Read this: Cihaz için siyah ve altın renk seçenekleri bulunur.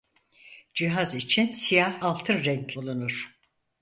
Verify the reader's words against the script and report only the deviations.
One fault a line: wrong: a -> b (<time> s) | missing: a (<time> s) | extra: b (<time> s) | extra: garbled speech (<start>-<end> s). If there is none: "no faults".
missing: ve (2.0 s)
missing: seçenekleri (2.7 s)